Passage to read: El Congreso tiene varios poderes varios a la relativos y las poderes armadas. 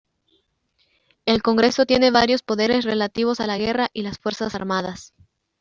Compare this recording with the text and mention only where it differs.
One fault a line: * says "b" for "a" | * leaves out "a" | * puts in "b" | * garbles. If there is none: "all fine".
* says "relativos" for "varios"
* says "guerra" for "relativos"
* says "fuerzas" for "poderes"